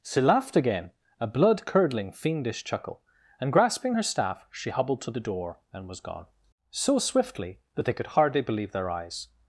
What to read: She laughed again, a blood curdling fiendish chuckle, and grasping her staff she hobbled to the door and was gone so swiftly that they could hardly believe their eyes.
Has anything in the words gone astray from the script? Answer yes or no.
no